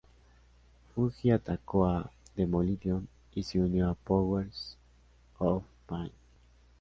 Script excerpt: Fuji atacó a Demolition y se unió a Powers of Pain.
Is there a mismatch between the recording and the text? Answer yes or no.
no